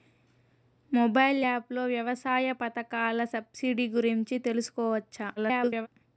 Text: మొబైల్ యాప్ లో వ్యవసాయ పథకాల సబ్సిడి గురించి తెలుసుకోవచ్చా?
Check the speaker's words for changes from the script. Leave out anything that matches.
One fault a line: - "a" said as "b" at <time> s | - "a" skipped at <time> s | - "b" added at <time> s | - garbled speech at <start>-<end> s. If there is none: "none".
- garbled speech at 5.4-5.9 s